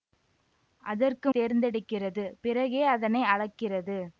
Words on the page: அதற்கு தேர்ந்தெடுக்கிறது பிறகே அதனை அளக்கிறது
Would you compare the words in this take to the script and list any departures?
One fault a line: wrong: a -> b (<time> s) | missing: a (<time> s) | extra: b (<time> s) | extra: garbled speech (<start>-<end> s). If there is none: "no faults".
no faults